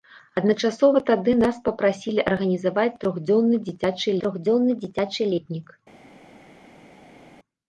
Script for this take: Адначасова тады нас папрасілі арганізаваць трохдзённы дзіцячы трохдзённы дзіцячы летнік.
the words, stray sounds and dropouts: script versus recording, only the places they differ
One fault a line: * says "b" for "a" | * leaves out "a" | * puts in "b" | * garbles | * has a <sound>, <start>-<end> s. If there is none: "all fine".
all fine